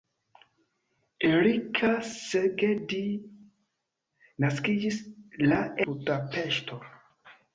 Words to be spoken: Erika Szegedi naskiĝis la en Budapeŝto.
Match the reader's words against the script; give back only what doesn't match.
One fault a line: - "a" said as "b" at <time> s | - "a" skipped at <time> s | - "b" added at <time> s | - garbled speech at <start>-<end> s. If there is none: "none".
- "en" skipped at 5.6 s